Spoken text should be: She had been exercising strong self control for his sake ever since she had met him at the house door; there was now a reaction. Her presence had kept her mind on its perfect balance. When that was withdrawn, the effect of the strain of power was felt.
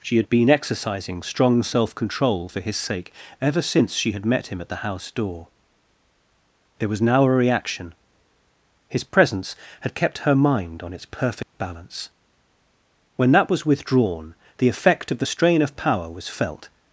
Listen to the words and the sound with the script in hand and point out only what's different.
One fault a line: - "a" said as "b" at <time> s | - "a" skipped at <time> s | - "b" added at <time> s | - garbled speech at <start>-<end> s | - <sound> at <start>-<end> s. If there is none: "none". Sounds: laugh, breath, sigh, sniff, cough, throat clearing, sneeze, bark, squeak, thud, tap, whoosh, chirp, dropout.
- "Her" said as "His" at 8.9 s
- dropout at 11.4-11.5 s